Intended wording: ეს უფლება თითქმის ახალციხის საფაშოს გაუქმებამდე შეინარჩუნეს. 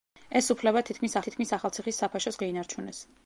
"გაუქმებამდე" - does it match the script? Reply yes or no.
no